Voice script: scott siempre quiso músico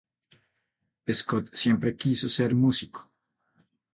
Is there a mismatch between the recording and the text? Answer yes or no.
yes